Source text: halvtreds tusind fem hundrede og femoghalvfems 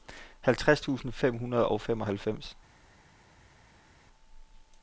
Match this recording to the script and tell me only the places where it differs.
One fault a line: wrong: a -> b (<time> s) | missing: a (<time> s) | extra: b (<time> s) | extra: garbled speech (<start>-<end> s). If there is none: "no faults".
no faults